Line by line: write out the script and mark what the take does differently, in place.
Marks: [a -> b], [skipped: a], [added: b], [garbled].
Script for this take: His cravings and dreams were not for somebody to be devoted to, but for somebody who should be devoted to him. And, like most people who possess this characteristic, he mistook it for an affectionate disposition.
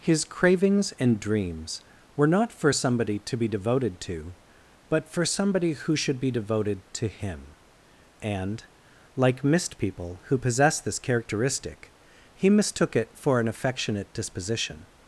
His cravings and dreams were not for somebody to be devoted to, but for somebody who should be devoted to him. And, like [most -> mist] people who possess this characteristic, he mistook it for an affectionate disposition.